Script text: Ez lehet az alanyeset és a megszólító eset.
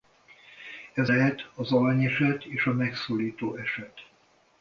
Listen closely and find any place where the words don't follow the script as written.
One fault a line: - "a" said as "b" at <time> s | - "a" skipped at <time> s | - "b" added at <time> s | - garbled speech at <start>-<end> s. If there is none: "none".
none